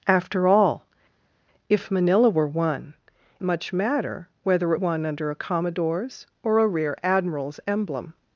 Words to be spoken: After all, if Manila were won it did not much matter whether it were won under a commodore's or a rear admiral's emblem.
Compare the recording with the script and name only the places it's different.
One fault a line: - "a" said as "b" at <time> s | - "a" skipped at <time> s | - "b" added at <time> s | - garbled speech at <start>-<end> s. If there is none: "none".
- "it did not" skipped at 2.9 s
- "were" skipped at 4.8 s